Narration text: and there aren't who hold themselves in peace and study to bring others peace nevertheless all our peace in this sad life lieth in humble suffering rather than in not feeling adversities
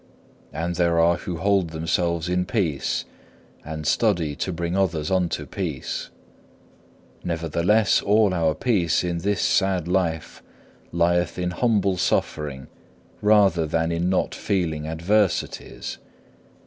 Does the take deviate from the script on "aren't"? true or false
true